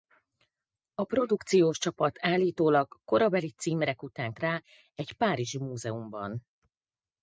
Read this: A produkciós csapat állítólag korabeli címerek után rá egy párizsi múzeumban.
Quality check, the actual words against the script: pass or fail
pass